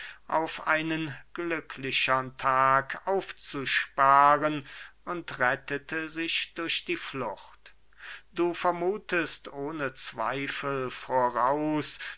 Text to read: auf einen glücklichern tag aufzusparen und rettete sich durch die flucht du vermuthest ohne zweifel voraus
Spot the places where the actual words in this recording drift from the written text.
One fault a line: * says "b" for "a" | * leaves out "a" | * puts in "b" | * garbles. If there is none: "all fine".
all fine